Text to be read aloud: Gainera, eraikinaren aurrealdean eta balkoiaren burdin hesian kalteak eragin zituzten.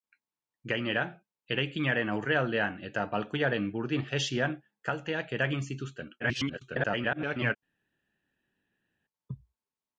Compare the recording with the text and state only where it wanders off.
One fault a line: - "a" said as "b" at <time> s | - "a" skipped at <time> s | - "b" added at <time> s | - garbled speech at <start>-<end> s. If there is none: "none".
- garbled speech at 6.2-7.6 s